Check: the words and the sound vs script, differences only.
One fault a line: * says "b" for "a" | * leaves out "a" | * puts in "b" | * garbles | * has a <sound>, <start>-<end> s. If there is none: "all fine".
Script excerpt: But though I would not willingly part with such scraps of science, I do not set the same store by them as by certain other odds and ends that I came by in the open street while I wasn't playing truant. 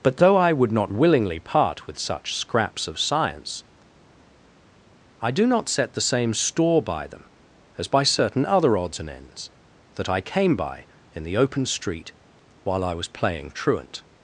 * says "was" for "wasn't"